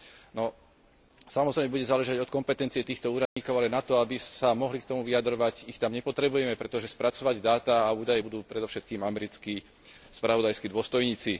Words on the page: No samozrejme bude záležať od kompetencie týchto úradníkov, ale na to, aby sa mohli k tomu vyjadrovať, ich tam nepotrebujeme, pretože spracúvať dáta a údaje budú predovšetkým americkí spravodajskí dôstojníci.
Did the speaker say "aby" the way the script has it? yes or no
yes